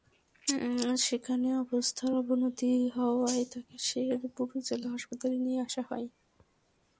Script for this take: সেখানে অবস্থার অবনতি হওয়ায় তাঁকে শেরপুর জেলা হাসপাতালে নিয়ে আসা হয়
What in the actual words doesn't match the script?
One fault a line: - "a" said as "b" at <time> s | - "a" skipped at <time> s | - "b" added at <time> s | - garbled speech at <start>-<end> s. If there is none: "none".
none